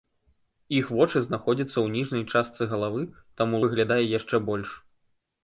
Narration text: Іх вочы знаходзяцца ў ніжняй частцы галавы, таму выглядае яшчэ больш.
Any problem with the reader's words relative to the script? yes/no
no